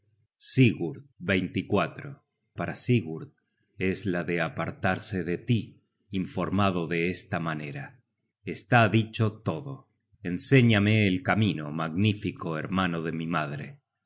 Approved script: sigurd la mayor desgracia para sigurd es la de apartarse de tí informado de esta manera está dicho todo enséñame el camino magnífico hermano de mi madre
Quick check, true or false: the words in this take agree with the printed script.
false